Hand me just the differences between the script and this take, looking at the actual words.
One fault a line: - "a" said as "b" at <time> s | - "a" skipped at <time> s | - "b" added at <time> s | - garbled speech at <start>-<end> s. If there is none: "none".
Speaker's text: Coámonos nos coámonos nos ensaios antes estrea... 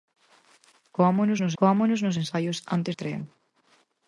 none